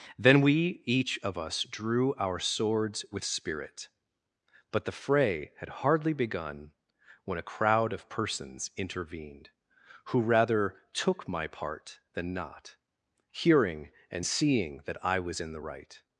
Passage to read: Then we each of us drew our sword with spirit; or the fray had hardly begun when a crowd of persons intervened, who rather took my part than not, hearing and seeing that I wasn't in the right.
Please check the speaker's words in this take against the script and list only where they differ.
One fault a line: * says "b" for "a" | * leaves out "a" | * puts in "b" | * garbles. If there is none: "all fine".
* says "swords" for "sword"
* says "but" for "or"
* says "was" for "wasn't"